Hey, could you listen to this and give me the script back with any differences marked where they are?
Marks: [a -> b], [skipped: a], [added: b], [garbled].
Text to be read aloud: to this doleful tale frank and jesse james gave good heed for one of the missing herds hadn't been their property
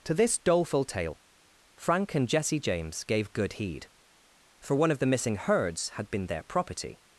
to this doleful tale frank and jesse james gave good heed for one of the missing herds [hadn't -> had] been their property